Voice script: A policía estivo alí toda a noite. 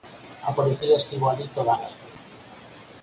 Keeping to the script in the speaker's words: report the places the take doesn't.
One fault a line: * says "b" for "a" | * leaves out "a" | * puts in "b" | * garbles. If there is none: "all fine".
all fine